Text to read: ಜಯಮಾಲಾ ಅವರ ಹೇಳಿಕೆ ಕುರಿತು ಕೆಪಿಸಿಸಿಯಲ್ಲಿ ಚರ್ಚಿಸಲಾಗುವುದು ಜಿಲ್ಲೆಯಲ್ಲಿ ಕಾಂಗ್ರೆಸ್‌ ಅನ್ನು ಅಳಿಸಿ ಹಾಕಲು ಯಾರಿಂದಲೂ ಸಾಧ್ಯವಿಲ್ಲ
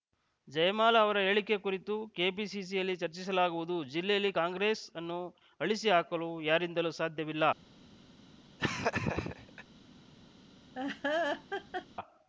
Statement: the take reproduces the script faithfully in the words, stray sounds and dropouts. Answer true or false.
false